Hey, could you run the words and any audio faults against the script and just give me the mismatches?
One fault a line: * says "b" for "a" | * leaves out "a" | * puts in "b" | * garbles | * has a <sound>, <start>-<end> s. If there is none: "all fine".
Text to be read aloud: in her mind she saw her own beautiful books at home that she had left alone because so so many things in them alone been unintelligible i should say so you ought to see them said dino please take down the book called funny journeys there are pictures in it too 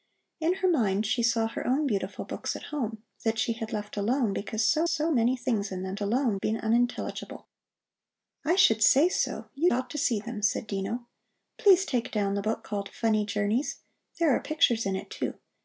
all fine